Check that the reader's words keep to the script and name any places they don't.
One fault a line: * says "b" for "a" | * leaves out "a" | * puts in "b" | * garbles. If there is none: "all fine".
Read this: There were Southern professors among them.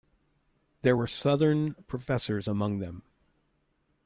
all fine